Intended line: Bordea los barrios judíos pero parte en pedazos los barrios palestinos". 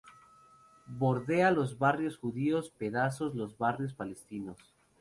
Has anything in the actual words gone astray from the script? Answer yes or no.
yes